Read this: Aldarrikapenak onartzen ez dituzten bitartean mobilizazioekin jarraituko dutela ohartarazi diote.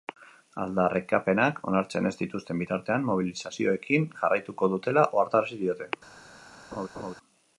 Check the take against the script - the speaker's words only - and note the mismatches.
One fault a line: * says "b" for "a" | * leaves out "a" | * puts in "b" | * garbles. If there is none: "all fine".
all fine